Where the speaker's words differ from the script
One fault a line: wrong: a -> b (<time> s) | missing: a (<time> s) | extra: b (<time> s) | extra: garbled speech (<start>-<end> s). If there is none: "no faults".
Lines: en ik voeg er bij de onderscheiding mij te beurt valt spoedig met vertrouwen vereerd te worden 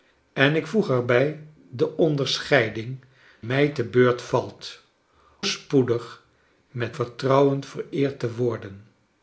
no faults